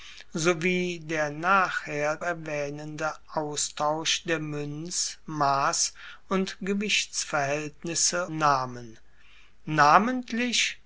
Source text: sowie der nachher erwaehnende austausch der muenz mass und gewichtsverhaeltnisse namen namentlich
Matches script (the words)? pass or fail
pass